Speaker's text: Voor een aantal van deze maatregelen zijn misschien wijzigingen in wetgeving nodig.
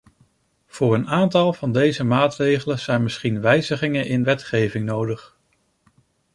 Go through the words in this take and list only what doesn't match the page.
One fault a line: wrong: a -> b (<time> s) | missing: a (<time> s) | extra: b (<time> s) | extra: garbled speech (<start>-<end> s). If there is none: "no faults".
no faults